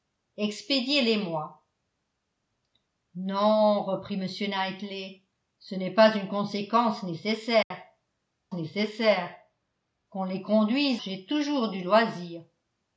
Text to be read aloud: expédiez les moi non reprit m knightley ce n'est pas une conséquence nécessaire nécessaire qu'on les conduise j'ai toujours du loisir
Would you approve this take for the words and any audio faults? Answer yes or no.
no